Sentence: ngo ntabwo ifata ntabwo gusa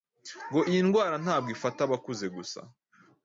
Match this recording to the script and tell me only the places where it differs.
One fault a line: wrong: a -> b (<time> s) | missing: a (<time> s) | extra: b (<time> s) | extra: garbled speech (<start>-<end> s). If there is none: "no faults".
extra: iyi ndwara (0.7 s)
wrong: ntabwo -> abakuze (1.9 s)